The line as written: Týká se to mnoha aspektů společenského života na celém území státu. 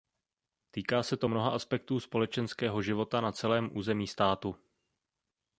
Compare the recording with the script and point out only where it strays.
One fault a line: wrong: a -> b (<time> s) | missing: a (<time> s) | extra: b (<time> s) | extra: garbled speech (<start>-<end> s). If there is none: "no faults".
no faults